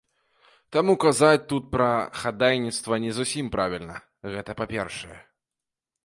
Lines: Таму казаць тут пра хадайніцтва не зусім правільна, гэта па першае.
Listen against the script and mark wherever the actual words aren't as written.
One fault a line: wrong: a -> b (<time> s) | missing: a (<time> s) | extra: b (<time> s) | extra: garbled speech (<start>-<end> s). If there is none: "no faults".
no faults